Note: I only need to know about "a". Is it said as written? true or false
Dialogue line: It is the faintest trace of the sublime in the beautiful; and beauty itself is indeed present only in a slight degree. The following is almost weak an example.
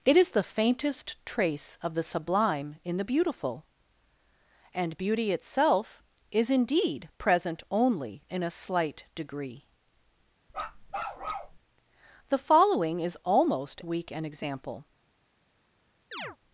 true